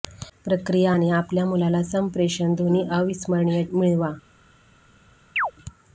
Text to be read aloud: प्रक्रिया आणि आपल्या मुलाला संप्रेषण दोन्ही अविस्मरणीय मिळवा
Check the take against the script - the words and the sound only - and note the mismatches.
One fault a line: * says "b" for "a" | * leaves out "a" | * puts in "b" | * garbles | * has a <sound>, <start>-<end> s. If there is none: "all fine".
* has a chirp, 5.4-5.5 s